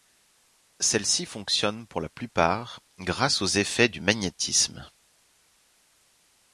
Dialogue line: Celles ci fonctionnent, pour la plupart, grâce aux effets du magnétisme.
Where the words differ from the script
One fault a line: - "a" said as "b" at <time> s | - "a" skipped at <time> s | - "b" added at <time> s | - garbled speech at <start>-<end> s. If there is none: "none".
none